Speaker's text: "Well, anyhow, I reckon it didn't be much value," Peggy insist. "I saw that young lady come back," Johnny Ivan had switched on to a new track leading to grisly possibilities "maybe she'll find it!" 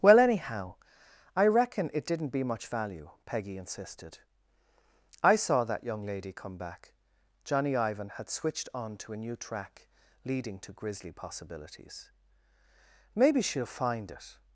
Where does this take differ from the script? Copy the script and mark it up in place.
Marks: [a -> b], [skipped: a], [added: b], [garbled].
"Well, anyhow, I reckon it didn't be much value," Peggy [insist. -> insisted] "I saw that young lady come back," Johnny Ivan had switched on to a new track leading to grisly possibilities "maybe she'll find it!"